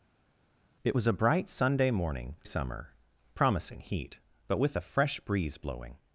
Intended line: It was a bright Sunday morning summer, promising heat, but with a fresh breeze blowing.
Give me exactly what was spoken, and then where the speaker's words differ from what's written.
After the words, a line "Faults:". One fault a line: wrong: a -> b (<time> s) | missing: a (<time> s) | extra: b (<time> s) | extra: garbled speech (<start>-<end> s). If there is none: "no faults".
It was a bright Sunday morning summer, promising heat, but with a fresh breeze blowing.
Faults:
no faults